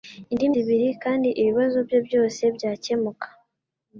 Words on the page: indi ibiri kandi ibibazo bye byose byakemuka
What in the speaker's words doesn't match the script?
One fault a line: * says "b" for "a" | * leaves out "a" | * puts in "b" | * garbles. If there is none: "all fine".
all fine